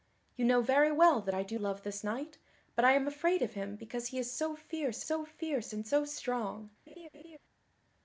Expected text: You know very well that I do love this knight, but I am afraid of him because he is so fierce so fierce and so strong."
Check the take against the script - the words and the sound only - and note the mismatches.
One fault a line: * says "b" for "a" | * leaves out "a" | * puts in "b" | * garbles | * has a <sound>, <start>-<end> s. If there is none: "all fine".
* has a laugh, 6.9-7.4 s